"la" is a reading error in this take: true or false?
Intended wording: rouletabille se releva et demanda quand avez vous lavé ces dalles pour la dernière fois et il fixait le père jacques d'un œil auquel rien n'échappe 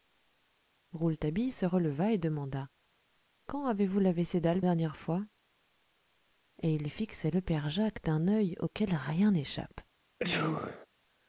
true